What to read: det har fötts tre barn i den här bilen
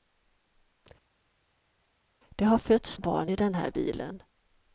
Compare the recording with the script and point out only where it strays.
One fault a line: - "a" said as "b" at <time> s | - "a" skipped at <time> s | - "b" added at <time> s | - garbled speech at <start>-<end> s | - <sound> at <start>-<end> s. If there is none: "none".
- "tre" skipped at 3.0 s